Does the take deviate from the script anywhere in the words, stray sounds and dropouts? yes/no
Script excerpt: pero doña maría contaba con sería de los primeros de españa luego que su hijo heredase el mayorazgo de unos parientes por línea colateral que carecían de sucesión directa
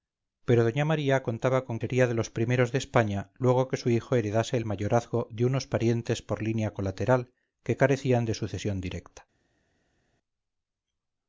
no